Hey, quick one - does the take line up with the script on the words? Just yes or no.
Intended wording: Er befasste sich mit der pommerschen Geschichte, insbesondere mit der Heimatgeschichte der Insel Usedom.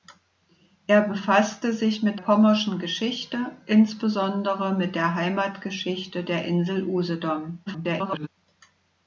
no